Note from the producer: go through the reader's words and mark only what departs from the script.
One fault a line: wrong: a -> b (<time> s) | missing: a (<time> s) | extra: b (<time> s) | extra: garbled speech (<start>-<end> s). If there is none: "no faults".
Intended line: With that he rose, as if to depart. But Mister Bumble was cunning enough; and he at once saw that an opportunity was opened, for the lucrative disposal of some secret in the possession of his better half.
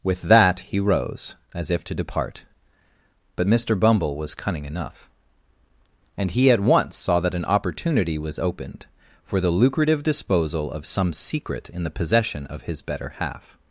no faults